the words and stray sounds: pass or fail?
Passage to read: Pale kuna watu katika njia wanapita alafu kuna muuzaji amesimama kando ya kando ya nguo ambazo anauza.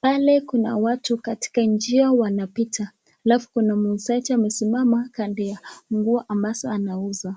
fail